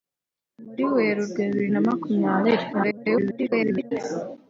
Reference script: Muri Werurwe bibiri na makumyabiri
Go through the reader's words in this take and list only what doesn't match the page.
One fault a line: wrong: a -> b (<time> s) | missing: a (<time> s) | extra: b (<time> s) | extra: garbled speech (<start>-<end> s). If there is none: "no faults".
extra: garbled speech (2.7-3.9 s)